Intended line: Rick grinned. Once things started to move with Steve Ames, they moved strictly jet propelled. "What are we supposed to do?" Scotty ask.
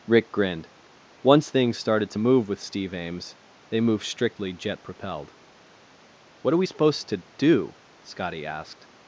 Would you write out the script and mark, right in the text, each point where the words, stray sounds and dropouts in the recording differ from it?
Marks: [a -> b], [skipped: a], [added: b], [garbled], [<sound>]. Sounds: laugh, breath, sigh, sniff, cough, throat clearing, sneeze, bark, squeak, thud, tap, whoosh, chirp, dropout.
Rick grinned. Once things started to move with Steve Ames, they moved strictly jet propelled. "What are we supposed to do?" Scotty [ask. -> asked]